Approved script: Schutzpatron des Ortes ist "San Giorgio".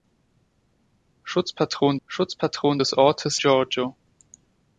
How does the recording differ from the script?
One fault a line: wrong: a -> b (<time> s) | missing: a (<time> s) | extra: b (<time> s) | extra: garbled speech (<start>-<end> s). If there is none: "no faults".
extra: schutzpatron (2.1 s)
missing: ist San (3.4 s)